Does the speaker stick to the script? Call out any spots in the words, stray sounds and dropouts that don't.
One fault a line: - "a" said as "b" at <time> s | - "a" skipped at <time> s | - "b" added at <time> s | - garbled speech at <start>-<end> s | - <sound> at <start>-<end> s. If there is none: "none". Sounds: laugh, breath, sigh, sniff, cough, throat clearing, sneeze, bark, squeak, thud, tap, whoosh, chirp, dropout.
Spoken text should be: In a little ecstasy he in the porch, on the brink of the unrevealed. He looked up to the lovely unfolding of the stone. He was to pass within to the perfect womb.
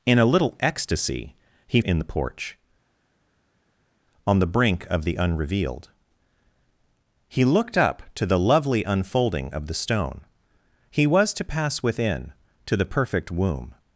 none